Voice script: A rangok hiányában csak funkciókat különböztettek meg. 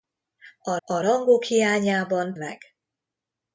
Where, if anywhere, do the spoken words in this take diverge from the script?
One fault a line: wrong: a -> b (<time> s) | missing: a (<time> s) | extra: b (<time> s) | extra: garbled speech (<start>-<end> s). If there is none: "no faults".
extra: a (0.8 s)
missing: csak funkciókat különböztettek (2.4 s)